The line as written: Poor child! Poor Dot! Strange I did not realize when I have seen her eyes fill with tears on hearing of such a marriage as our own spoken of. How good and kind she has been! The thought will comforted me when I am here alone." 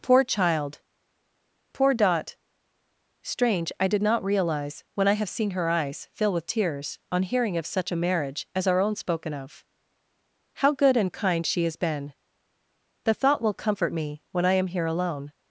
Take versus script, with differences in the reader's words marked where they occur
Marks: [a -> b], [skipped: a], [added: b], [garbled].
Poor child! Poor Dot! Strange I did not realize when I have seen her eyes fill with tears on hearing of such a marriage as our own spoken of. How good and kind she has been! The thought will [comforted -> comfort] me when I am here alone."